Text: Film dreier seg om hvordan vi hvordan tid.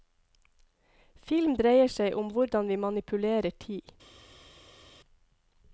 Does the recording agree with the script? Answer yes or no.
no